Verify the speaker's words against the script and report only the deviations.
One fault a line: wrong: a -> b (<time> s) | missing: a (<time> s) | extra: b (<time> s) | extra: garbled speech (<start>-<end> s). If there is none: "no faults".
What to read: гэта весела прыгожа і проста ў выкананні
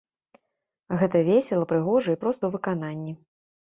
no faults